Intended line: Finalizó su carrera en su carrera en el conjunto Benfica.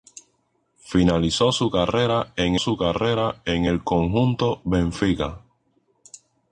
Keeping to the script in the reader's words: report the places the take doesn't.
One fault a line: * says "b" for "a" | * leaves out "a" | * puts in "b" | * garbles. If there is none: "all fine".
all fine